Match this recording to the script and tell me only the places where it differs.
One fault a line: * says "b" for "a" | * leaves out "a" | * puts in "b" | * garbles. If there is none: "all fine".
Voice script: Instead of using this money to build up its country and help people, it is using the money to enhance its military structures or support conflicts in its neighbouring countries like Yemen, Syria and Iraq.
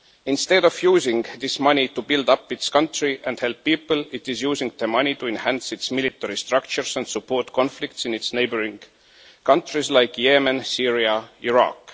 * says "and" for "or"